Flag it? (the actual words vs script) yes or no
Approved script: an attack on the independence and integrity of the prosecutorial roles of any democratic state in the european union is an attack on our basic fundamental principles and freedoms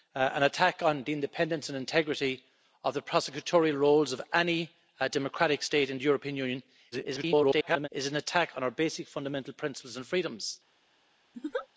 yes